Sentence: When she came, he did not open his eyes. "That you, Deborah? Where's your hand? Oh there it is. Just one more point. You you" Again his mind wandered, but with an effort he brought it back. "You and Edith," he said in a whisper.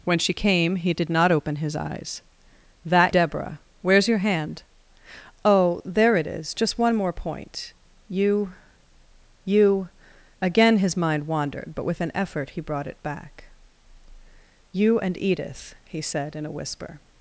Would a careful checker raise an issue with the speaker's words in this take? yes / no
yes